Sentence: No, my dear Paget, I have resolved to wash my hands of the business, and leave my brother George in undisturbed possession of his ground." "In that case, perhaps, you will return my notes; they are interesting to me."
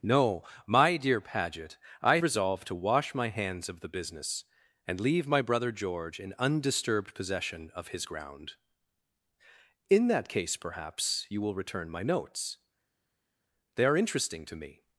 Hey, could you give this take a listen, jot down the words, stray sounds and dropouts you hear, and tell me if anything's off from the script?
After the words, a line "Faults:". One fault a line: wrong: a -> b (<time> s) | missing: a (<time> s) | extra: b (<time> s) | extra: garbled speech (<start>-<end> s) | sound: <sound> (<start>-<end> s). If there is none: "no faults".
No, my dear Paget, I resolved to wash my hands of the business, and leave my brother George in undisturbed possession of his ground." "In that case, perhaps, you will return my notes; they are interesting to me."
Faults:
missing: have (2.2 s)